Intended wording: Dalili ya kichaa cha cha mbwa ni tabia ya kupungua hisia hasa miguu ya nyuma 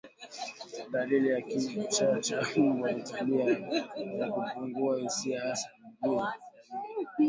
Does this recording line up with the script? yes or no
no